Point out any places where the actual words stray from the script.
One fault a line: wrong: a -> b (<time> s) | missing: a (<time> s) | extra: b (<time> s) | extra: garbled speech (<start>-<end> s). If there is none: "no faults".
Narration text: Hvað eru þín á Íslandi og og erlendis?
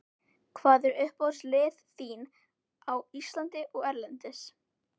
extra: uppáhaldslið (1.0 s)
missing: og (3.9 s)